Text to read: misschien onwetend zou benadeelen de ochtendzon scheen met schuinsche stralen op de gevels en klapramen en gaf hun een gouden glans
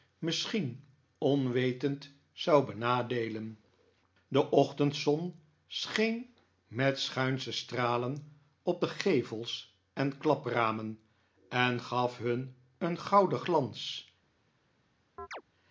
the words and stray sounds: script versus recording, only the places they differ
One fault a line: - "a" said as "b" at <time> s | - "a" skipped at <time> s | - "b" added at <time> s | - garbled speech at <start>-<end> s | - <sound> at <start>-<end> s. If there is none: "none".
- chirp at 15.2-15.4 s